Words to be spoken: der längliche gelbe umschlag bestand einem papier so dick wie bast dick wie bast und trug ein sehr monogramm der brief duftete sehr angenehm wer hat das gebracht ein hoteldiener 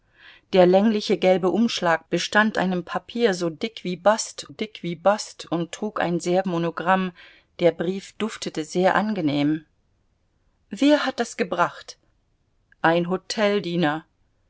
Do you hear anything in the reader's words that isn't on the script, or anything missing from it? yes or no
no